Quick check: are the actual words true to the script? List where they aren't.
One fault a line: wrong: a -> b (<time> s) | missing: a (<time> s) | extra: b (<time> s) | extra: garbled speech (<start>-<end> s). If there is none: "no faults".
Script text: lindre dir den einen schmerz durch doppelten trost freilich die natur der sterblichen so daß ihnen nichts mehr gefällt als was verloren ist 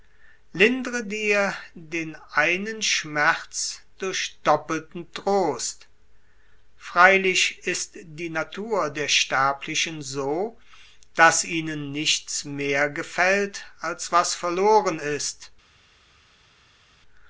extra: ist (7.7 s)